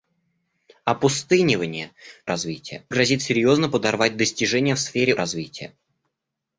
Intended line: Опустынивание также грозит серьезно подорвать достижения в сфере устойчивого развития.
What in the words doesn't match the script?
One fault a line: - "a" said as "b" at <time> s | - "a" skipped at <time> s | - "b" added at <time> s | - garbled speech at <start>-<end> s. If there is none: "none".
- "также" said as "развития" at 2.3 s
- "устойчивого" skipped at 5.1 s